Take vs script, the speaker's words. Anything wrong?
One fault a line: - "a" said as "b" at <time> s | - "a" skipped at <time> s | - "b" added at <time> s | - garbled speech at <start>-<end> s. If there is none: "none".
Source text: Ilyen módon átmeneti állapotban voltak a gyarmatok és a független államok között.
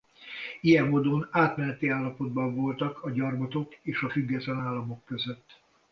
none